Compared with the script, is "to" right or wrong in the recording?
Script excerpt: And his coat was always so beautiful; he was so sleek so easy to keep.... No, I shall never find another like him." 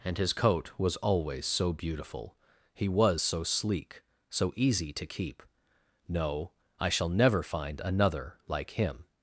right